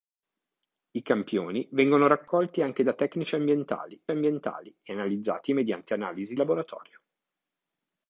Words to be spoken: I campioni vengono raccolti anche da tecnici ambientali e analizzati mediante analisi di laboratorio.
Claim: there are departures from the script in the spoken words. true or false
true